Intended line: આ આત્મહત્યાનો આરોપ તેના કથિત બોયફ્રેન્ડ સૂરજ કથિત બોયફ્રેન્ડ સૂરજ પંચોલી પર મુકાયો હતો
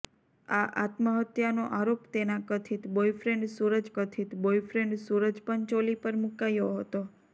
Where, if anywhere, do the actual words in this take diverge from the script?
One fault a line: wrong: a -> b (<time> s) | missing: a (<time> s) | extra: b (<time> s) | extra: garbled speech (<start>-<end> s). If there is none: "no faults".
no faults